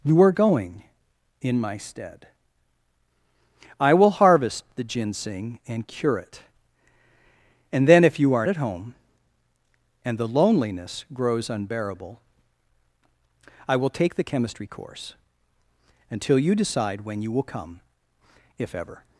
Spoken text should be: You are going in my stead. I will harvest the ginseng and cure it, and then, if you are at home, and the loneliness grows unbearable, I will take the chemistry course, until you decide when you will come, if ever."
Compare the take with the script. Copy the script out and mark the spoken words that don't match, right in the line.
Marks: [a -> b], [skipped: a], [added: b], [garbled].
You are going in my stead. I will harvest the ginseng and cure it, and then, if you are at home, and the loneliness grows unbearable, I will take the chemistry course, until you decide when you will come, if ever."